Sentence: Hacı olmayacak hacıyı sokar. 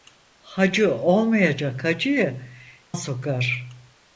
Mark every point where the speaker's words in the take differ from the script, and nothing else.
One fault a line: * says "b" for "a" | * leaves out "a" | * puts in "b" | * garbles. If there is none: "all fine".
all fine